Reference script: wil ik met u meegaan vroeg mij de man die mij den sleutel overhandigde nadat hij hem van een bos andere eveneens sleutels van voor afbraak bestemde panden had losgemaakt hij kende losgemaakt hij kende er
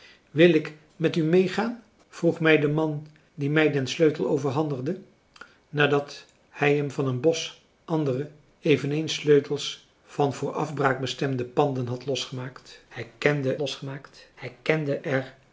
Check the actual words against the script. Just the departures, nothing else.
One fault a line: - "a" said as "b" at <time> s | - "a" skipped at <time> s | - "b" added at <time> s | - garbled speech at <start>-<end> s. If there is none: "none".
none